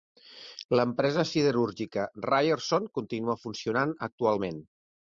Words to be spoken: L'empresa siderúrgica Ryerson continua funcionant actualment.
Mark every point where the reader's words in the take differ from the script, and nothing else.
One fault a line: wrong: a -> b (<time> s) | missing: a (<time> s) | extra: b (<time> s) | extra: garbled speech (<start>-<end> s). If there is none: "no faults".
no faults